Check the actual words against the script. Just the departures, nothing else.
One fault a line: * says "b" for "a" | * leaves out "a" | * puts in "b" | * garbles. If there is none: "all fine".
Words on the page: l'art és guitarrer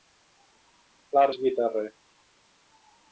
all fine